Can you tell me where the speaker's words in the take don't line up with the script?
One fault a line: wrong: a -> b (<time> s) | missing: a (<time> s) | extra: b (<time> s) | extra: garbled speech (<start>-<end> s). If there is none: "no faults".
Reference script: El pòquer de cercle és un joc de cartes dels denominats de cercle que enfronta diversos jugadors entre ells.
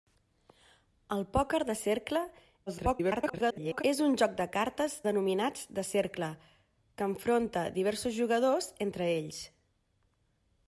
extra: garbled speech (2.7-3.8 s)
missing: dels (5.0 s)